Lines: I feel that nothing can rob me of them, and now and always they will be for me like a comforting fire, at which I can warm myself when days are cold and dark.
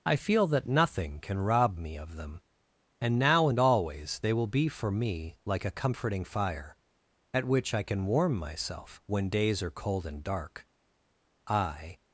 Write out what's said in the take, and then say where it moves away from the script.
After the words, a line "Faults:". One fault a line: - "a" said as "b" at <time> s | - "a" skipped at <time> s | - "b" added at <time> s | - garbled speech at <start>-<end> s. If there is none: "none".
I feel that nothing can rob me of them, and now and always they will be for me like a comforting fire, at which I can warm myself when days are cold and dark. I
Faults:
- "I" added at 11.5 s